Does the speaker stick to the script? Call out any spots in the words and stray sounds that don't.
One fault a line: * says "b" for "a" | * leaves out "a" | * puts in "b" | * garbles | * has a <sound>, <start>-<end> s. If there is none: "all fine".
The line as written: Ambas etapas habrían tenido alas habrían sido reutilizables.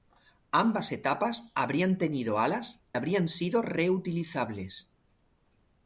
all fine